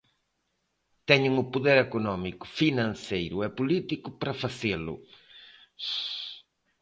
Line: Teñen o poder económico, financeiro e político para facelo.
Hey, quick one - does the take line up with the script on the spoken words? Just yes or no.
yes